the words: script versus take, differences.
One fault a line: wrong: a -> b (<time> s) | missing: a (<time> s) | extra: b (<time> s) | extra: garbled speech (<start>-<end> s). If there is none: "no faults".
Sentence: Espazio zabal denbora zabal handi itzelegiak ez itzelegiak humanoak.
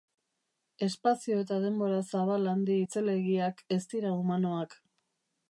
wrong: zabal -> eta (1.4 s)
wrong: itzelegiak -> dira (3.9 s)